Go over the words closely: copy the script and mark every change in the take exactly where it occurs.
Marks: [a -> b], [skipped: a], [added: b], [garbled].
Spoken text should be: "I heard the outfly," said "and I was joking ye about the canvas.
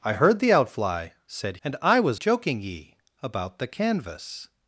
"I heard the outfly," said "and I was joking ye about the canvas.